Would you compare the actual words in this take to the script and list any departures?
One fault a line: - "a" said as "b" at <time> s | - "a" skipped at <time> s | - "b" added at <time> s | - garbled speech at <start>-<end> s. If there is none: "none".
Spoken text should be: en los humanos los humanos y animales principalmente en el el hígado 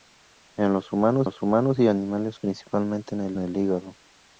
none